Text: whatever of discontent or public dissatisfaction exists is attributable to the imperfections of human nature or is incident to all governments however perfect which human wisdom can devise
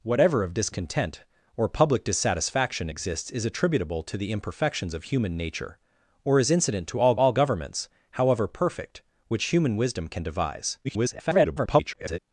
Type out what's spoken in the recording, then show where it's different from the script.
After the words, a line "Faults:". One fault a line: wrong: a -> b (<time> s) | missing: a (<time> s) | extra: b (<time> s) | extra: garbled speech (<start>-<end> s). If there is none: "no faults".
whatever of discontent or public dissatisfaction exists is attributable to the imperfections of human nature or is incident to all all governments however perfect which human wisdom can devise [garbled]
Faults:
extra: all (7.2 s)
extra: garbled speech (10.8-12.2 s)